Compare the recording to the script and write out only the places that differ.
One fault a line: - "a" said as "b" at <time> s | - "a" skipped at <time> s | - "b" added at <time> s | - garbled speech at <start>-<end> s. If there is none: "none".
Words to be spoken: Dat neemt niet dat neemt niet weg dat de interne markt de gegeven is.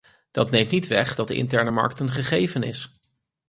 - "dat neemt niet" skipped at 0.9 s
- "de" said as "een" at 2.0 s